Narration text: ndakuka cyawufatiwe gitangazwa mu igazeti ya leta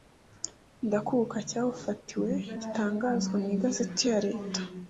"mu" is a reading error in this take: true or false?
false